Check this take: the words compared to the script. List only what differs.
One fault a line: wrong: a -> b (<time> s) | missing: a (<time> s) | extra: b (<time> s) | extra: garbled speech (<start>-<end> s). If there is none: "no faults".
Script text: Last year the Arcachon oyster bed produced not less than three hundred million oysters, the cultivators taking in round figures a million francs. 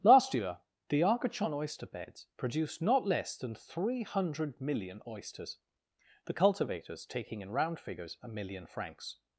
wrong: bed -> beds (1.9 s)